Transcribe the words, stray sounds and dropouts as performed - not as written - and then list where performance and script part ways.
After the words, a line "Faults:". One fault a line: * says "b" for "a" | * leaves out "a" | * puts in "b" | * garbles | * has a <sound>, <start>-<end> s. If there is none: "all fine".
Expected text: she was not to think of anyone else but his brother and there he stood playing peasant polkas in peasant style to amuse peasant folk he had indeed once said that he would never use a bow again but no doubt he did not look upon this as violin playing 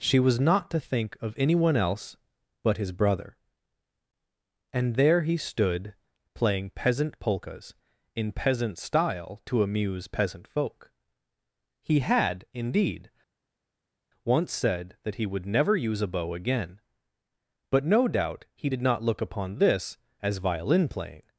she was not to think of anyone else but his brother and there he stood playing peasant polkas in peasant style to amuse peasant folk he had indeed once said that he would never use a bow again but no doubt he did not look upon this as violin playing
Faults:
all fine